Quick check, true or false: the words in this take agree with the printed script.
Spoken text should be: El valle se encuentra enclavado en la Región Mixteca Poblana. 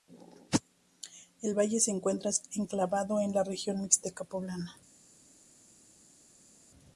true